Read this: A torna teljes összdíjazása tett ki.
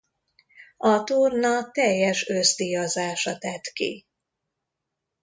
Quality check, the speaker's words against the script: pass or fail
pass